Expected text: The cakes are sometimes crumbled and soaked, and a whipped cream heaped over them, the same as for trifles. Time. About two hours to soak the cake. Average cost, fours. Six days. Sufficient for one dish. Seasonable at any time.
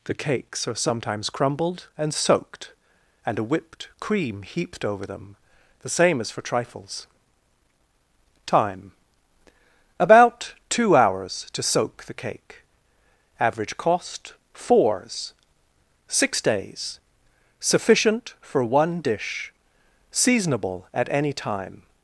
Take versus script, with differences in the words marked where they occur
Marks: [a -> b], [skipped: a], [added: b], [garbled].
The cakes are sometimes crumbled and soaked, and a whipped cream heaped over them, the same as for trifles. Time. About two hours to soak the cake. Average cost, fours. Six days. Sufficient for one dish. Seasonable at any time.